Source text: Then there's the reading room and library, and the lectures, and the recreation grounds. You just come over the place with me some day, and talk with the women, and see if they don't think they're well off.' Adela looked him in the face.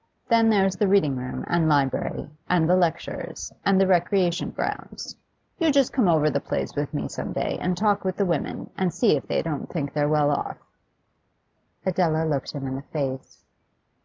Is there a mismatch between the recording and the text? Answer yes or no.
no